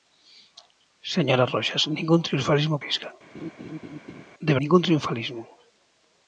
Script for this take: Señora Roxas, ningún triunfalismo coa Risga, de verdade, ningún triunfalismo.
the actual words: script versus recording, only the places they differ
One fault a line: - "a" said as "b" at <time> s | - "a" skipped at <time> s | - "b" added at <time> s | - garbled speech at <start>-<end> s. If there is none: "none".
- "coa" skipped at 2.8 s
- "verdade" skipped at 4.5 s